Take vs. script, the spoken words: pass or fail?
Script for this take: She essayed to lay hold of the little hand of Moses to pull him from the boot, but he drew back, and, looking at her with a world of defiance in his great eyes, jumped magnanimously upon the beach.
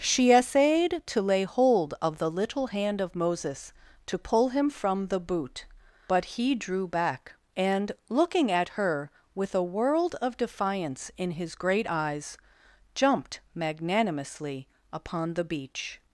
pass